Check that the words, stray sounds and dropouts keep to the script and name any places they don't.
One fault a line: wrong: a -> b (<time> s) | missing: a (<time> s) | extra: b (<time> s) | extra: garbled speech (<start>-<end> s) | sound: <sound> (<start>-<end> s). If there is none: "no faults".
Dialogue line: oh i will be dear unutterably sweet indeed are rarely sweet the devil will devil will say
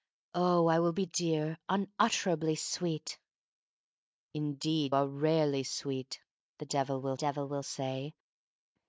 no faults